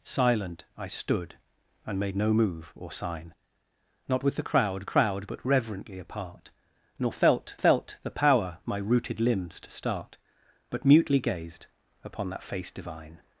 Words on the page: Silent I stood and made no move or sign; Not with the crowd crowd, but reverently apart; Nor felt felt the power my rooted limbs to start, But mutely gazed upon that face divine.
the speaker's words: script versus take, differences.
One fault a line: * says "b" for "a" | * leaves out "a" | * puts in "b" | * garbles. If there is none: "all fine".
all fine